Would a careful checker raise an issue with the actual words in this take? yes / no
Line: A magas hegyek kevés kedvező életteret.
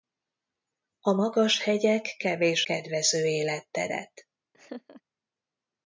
no